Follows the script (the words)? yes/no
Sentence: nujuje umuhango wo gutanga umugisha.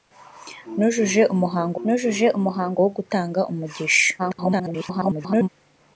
no